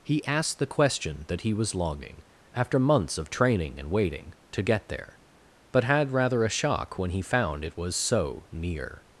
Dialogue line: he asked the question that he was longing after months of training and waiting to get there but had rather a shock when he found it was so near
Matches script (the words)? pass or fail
pass